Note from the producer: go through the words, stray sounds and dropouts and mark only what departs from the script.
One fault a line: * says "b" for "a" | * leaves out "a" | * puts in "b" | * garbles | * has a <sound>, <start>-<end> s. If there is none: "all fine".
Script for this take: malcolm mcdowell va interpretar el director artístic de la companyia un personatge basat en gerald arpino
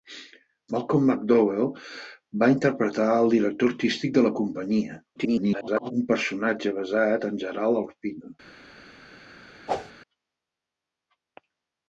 * garbles
* has a whoosh, 9.7-9.9 s